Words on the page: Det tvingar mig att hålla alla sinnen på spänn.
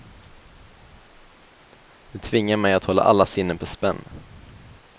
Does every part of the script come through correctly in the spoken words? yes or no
yes